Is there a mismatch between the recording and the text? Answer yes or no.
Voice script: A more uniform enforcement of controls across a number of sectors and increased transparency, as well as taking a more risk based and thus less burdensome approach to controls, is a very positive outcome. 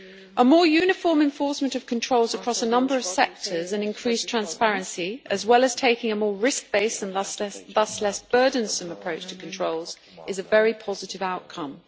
no